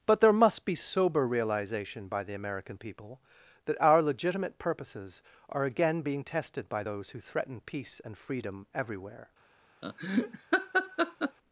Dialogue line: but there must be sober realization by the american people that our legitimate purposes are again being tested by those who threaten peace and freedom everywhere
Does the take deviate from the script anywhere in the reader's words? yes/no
no